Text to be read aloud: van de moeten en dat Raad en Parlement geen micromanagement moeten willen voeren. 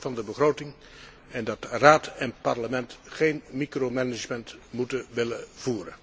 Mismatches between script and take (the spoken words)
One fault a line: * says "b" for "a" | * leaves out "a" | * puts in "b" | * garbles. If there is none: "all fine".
* says "begroting" for "moeten"